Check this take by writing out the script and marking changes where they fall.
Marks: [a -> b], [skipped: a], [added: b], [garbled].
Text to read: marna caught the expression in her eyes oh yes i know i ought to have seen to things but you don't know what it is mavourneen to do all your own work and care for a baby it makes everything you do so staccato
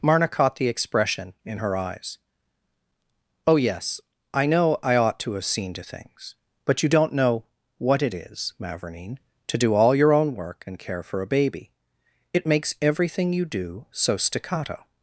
marna caught the expression in her eyes oh yes i know i ought to have seen to things but you don't know what it is mavourneen to do all your own work and care for a baby it makes everything you do so staccato